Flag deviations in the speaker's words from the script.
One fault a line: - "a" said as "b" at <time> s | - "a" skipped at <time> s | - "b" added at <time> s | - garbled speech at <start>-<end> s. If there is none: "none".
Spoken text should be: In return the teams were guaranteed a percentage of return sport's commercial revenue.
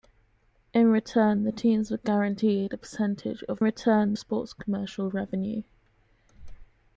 none